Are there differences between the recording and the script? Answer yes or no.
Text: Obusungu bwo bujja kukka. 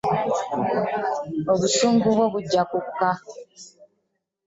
no